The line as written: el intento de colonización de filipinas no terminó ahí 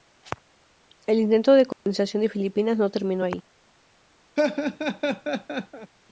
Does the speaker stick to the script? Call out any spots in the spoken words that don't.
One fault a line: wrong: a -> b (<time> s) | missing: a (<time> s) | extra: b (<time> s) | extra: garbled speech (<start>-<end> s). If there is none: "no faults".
no faults